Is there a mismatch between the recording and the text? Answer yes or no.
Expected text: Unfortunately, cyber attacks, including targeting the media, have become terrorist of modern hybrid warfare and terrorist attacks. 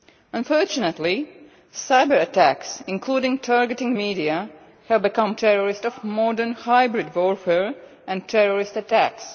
no